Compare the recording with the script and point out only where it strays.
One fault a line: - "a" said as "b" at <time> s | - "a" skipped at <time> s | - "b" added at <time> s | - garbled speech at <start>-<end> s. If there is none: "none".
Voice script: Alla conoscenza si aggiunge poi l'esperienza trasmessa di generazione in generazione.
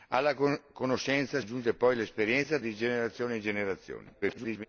- "si" skipped at 1.4 s
- "trasmessa" skipped at 2.6 s
- garbled speech at 4.2-4.7 s